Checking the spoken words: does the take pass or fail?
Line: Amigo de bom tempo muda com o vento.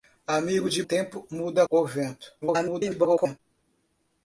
fail